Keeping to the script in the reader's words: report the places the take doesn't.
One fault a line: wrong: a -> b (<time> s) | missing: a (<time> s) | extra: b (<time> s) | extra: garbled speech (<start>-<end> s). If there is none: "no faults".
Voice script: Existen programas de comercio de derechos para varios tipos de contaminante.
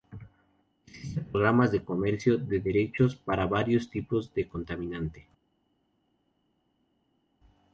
no faults